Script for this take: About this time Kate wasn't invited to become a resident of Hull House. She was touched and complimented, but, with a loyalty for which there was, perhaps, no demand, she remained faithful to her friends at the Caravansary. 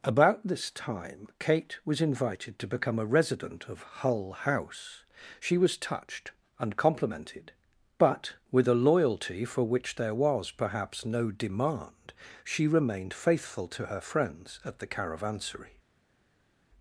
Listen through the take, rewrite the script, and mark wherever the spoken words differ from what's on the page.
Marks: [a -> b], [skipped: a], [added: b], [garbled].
About this time Kate [wasn't -> was] invited to become a resident of Hull House. She was touched and complimented, but, with a loyalty for which there was, perhaps, no demand, she remained faithful to her friends at the Caravansary.